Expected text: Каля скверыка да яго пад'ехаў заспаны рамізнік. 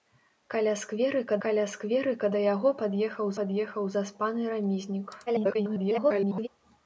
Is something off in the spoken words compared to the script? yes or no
yes